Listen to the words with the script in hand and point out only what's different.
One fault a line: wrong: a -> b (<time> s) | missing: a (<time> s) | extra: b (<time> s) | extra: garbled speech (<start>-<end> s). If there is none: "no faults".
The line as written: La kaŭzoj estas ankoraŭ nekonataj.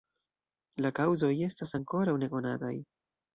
no faults